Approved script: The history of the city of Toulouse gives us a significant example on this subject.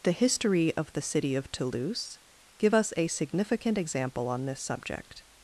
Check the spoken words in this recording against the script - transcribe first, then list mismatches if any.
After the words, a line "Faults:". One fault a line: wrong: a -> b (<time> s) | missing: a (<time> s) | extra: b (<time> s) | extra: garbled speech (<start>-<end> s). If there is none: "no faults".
The history of the city of Toulouse give us a significant example on this subject.
Faults:
wrong: gives -> give (2.6 s)